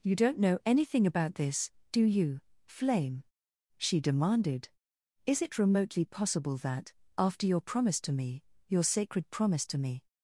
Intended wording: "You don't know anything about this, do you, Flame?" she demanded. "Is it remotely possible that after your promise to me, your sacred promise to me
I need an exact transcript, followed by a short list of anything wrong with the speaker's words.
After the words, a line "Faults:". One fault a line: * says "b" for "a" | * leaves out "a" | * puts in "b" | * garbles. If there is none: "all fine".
"You don't know anything about this, do you, Flame?" she demanded. "Is it remotely possible that after your promise to me, your sacred promise to me
Faults:
all fine